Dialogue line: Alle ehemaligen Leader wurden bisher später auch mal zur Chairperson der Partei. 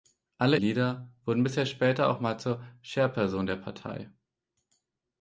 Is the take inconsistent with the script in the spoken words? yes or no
yes